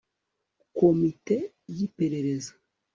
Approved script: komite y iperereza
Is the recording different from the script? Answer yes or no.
no